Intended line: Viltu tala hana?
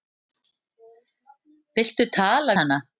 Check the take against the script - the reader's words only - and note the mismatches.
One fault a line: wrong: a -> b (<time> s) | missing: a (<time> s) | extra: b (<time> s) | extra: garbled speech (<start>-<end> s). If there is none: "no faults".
no faults